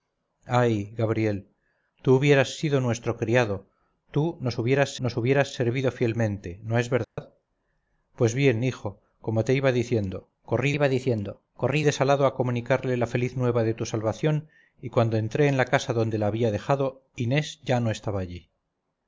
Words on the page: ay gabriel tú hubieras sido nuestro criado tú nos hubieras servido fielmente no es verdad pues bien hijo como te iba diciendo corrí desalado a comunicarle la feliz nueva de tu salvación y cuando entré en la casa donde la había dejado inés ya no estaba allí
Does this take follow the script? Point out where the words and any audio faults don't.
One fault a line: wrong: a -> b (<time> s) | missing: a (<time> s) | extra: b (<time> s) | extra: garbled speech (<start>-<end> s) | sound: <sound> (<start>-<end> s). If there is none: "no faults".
extra: nos hubieras (5.0 s)
sound: dropout (7.0-7.2 s)
extra: iba diciendo corrí (10.7 s)